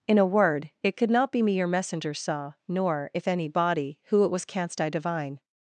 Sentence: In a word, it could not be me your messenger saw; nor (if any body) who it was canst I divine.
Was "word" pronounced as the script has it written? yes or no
yes